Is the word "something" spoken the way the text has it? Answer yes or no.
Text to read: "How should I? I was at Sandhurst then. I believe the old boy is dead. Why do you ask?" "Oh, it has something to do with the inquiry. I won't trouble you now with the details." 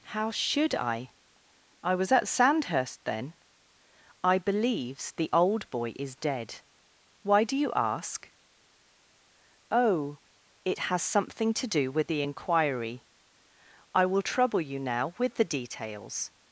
yes